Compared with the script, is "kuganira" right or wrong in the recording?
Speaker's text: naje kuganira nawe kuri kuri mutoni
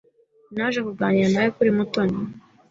right